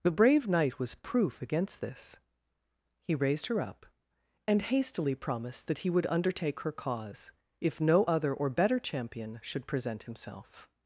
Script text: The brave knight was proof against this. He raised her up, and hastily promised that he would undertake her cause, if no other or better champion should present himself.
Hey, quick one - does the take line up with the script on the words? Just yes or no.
yes